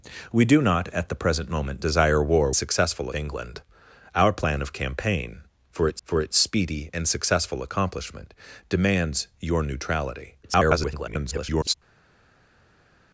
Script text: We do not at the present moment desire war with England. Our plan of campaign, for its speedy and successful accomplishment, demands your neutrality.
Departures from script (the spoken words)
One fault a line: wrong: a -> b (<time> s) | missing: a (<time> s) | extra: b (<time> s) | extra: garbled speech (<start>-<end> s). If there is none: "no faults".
wrong: with -> successful (2.6 s)
extra: for its (6.0 s)
extra: garbled speech (10.4-11.7 s)